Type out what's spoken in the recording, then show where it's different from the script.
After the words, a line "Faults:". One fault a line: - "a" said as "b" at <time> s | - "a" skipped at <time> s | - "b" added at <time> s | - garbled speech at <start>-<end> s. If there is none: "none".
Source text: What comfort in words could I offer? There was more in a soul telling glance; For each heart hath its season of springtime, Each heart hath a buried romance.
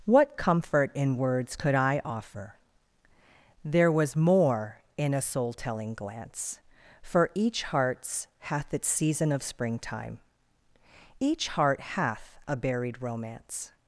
What comfort in words could I offer? There was more in a soul telling glance; For each hearts hath its season of springtime, Each heart hath a buried romance.
Faults:
- "heart" said as "hearts" at 7.6 s